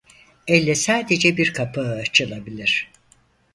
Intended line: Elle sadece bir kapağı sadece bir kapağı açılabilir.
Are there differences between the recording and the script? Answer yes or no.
yes